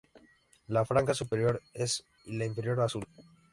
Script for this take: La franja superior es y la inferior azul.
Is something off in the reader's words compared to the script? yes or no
no